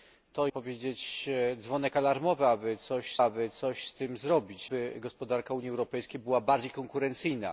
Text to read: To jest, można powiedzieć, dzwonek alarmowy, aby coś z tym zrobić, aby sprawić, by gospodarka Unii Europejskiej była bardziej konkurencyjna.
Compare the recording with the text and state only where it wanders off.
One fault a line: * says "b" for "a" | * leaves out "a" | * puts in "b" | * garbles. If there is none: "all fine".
* leaves out "jest można"
* puts in "aby coś"
* leaves out "aby sprawić"